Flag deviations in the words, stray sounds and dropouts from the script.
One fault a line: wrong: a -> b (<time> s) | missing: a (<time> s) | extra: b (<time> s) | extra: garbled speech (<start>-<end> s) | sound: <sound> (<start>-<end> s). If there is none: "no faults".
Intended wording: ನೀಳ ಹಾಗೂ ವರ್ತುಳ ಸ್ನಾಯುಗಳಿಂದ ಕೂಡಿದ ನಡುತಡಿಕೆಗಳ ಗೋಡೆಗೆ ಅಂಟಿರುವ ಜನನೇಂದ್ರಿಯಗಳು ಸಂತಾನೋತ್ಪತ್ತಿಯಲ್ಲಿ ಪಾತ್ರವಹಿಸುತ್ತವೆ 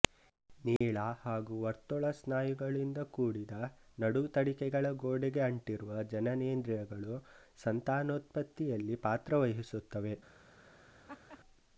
sound: dropout (0.8-0.8 s)
sound: laugh (11.1-11.4 s)